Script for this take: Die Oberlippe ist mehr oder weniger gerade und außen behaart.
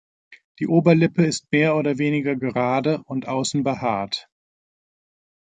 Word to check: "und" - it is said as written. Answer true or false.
true